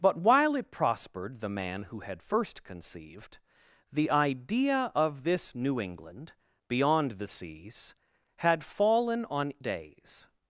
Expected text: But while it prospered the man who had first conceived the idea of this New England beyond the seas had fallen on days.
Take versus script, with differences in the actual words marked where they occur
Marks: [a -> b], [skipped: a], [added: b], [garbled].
But while it prospered the man who had first conceived the idea of this New England beyond the seas had fallen on days.